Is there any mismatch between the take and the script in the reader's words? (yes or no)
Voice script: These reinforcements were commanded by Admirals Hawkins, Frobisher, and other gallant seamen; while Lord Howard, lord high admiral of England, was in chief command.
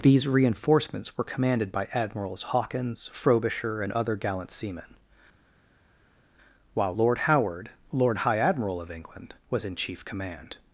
no